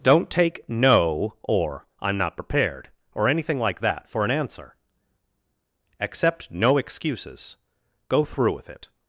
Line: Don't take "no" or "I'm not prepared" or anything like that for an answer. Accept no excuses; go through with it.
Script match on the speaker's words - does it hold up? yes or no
yes